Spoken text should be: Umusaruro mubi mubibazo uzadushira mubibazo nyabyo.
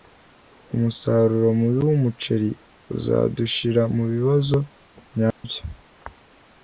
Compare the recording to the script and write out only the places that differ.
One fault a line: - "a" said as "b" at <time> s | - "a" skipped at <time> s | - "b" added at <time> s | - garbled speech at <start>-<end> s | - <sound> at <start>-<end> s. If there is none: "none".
- "mubibazo" said as "wumuceri" at 1.9 s
- dropout at 5.3-5.4 s